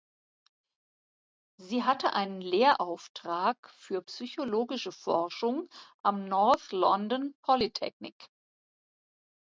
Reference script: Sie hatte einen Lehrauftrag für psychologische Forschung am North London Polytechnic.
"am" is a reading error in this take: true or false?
false